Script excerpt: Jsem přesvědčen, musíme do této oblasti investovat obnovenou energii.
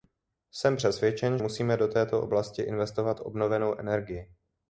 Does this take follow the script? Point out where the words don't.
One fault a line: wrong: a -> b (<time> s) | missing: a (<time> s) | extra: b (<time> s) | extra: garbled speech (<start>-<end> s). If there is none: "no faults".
no faults